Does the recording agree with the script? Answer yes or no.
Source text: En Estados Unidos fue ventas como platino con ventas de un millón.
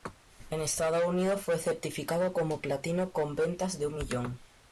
no